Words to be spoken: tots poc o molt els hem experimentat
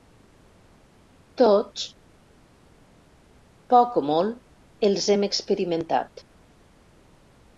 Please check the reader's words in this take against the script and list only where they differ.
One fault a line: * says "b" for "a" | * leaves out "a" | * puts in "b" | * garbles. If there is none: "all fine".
all fine